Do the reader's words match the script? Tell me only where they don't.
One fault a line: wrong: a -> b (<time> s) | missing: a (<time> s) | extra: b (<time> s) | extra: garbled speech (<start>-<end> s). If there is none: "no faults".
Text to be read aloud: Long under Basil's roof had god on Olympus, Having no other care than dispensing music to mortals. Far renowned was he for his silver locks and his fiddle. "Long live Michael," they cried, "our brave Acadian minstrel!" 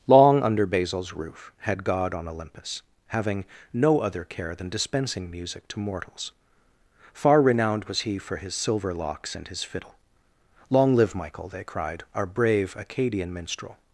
no faults